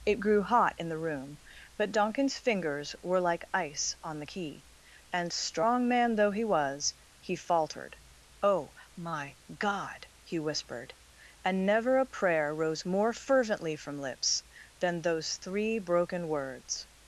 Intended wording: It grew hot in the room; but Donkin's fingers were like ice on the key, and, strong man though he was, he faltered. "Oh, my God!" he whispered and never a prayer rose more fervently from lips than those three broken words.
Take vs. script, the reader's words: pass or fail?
pass